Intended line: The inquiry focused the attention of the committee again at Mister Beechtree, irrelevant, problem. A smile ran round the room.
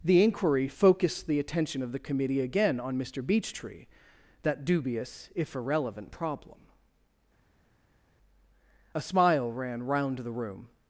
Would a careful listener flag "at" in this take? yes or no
yes